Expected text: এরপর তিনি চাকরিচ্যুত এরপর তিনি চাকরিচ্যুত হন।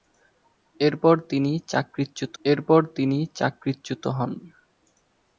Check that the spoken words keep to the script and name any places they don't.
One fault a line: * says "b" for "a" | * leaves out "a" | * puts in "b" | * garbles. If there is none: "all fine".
all fine